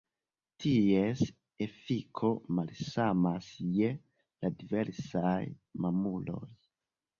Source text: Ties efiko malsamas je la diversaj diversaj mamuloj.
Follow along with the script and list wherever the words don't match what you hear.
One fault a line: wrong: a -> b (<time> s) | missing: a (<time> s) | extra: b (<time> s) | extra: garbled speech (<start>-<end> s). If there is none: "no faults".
missing: diversaj (5.4 s)